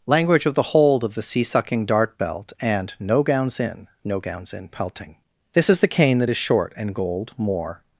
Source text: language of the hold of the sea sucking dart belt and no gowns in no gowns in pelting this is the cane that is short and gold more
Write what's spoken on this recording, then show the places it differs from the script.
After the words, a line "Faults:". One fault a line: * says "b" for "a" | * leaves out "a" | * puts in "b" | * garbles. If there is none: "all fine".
language of the hold of the sea sucking dart belt and no gowns in no gowns in pelting this is the cane that is short and gold more
Faults:
all fine